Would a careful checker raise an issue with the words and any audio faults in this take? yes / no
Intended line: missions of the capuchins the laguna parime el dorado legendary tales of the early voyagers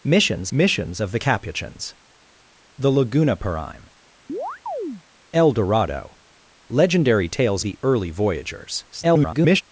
yes